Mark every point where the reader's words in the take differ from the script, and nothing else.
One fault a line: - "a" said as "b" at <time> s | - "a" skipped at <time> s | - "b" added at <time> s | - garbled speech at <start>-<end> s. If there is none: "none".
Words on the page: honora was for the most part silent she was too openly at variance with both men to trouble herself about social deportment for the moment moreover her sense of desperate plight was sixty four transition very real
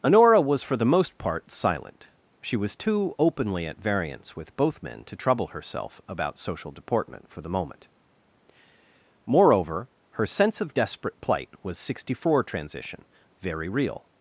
none